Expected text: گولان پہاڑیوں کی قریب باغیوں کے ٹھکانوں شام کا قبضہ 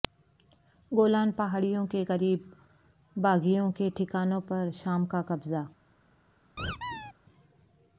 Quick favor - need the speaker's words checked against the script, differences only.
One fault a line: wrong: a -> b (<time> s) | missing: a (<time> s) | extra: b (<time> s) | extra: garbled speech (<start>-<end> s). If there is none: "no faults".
wrong: کی -> کے (1.9 s)
extra: پر (4.5 s)